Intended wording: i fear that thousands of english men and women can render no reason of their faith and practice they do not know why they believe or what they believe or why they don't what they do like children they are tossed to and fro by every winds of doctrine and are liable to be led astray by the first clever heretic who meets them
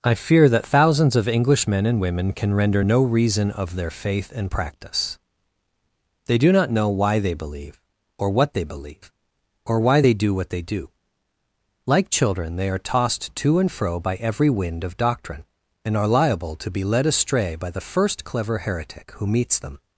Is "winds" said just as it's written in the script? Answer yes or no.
no